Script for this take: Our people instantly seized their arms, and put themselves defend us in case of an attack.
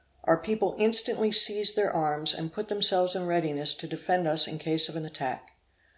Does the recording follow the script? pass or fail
fail